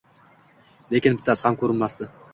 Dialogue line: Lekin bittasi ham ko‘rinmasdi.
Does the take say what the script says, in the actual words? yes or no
yes